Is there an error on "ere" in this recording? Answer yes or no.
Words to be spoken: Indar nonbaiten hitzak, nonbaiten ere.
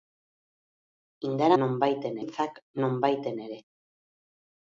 no